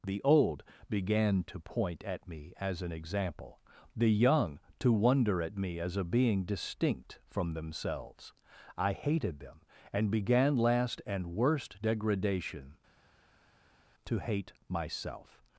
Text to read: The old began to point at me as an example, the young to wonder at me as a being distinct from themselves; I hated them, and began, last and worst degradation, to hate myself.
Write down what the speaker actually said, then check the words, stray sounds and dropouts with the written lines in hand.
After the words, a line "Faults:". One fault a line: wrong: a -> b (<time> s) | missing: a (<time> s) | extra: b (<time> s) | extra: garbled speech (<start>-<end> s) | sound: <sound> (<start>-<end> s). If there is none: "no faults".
The old began to point at me as an example, the young to wonder at me as a being distinct from themselves; I hated them, and began, last and worst degradation, to hate myself.
Faults:
no faults